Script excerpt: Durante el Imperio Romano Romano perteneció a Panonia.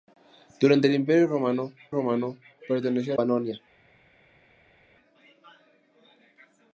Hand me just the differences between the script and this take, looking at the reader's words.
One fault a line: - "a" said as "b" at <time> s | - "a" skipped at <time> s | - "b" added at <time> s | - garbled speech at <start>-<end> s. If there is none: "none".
none